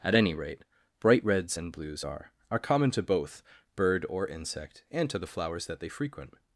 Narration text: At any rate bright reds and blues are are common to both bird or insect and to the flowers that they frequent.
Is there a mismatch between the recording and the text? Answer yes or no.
no